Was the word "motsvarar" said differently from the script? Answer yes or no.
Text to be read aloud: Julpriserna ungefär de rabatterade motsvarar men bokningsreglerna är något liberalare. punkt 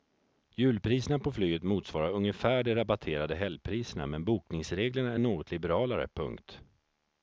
yes